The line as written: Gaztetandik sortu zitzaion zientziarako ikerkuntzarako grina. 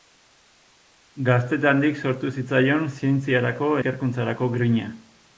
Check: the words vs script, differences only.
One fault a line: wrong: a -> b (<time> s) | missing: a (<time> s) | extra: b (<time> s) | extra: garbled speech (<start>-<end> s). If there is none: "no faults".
no faults